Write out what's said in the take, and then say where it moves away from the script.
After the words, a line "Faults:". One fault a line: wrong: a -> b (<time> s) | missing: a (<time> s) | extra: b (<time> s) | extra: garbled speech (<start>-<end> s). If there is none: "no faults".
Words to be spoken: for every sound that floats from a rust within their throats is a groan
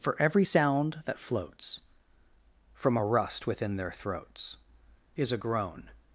for every sound that floats from a rust within their throats is a groan
Faults:
no faults